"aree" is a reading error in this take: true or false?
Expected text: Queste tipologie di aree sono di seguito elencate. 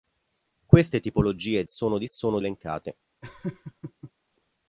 true